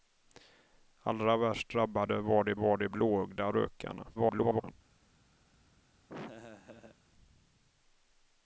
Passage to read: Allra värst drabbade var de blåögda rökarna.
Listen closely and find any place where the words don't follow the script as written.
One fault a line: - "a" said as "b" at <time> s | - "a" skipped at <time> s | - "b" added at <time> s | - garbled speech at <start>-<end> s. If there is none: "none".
- "var de" added at 2.5 s
- garbled speech at 4.1-4.7 s